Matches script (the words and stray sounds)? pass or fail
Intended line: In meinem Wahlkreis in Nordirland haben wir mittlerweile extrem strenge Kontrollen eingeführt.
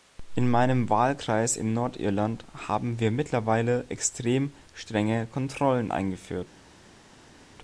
pass